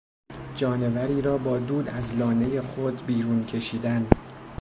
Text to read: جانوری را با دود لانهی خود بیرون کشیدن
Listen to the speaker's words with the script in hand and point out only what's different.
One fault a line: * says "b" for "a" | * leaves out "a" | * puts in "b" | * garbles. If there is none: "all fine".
* puts in "از"